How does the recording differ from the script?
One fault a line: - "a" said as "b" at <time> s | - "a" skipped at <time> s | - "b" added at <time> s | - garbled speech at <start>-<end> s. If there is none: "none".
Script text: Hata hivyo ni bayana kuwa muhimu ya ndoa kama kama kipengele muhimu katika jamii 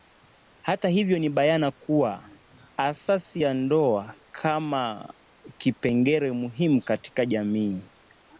- "muhimu" said as "asasi" at 2.8 s
- "kama" skipped at 5.1 s